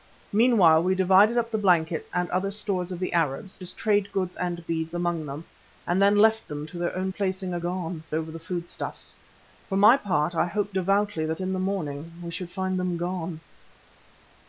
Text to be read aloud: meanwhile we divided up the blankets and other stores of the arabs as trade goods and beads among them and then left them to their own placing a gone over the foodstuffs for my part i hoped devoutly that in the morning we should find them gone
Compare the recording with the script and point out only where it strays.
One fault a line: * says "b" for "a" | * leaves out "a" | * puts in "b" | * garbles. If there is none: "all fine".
all fine